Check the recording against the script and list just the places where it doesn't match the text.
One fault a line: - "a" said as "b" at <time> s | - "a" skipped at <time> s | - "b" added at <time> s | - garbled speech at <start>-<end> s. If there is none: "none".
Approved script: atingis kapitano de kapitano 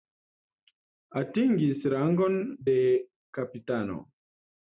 - "kapitano" said as "rangon" at 1.9 s